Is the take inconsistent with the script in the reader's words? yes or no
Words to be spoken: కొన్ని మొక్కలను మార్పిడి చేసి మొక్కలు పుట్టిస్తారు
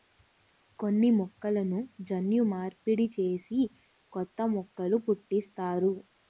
yes